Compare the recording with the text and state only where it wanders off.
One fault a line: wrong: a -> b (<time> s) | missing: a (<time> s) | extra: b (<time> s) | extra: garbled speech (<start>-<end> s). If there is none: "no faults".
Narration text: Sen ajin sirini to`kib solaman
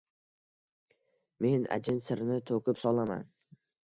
wrong: Sen -> Men (1.4 s)